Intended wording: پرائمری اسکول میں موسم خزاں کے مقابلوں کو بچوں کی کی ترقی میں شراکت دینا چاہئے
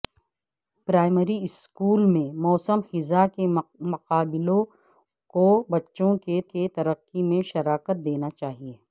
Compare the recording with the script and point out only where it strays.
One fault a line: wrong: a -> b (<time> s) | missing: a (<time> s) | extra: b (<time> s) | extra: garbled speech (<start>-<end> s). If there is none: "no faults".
no faults